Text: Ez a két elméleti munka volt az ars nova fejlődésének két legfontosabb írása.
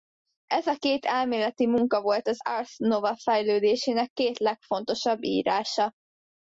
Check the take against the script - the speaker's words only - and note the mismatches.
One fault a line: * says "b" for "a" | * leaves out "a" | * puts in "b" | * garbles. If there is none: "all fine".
all fine